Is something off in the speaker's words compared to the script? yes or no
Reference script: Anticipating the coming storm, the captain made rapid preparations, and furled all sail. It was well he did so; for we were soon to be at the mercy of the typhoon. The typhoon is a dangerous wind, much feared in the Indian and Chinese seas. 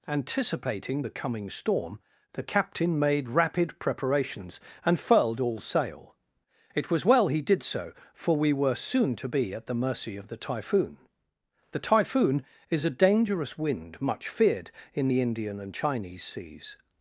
no